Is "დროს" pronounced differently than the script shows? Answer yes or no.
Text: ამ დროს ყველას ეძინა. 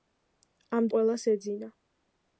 yes